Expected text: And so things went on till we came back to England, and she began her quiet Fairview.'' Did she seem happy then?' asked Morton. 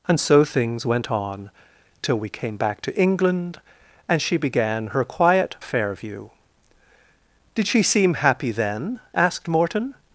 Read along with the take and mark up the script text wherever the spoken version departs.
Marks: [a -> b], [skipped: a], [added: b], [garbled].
And so things went on till we came back to England, and she began her quiet Fairview.'' Did she seem happy then?' asked Morton.